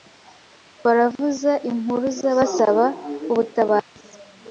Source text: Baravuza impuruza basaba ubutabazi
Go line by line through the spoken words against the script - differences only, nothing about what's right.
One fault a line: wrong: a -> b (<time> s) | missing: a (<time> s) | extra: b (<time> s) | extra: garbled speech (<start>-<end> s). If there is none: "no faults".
no faults